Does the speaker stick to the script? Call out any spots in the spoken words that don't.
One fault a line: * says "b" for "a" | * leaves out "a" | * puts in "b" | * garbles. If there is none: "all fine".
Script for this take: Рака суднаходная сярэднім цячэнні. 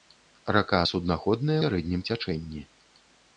all fine